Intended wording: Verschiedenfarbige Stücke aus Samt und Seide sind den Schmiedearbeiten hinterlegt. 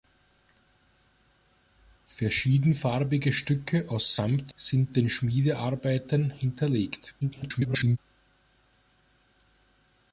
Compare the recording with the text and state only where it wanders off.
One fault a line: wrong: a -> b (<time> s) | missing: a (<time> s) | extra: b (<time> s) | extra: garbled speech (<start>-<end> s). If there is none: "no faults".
missing: und Seide (4.5 s)
extra: garbled speech (7.2-8.0 s)